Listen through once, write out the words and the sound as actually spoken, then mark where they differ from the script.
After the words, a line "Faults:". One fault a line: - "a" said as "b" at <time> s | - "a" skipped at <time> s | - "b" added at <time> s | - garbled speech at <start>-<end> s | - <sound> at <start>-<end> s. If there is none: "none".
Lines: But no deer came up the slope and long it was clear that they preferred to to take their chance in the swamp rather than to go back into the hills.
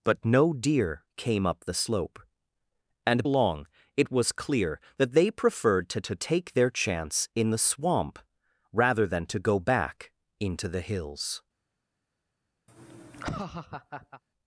But no deer came up the slope and long it was clear that they preferred to to take their chance in the swamp rather than to go back into the hills.
Faults:
- laugh at 12.7-14.2 s